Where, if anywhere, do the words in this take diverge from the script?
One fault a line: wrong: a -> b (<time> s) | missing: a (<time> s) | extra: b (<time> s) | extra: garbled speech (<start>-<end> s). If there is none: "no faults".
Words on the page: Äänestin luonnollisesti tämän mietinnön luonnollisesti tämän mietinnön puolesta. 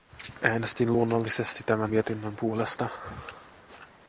missing: luonnollisesti tämän mietinnön (2.4 s)